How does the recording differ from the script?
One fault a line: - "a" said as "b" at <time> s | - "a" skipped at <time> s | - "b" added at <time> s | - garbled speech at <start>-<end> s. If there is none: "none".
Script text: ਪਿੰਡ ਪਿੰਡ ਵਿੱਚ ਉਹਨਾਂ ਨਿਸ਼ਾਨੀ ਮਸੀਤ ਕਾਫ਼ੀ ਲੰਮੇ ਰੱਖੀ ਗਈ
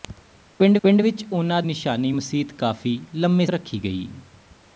none